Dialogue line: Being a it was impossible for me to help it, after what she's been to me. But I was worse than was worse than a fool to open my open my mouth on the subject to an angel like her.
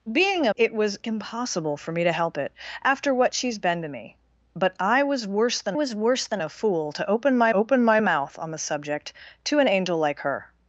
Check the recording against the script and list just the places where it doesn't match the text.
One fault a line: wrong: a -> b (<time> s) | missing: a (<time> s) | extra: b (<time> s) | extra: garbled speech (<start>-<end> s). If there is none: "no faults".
no faults